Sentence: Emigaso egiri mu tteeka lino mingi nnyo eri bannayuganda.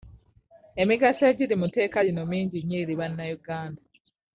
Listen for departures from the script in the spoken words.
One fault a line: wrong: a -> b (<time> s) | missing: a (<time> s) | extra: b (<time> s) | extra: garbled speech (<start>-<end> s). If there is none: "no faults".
no faults